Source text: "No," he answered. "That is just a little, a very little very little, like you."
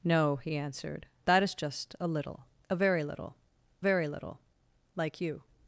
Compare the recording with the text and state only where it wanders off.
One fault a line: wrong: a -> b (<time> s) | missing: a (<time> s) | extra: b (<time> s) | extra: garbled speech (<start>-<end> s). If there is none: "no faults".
no faults